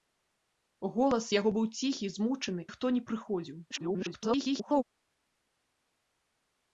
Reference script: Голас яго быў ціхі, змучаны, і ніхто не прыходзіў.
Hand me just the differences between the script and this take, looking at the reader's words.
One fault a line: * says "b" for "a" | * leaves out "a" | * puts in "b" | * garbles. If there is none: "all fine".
* leaves out "і"
* garbles